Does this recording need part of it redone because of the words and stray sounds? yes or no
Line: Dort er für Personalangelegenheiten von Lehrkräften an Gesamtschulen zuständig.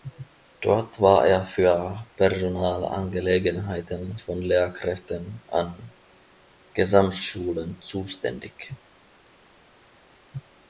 yes